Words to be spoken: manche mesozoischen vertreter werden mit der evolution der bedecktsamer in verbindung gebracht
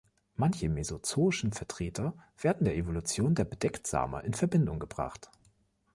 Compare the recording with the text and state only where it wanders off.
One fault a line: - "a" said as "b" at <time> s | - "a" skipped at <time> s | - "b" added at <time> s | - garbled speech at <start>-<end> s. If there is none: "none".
- "mit" skipped at 2.6 s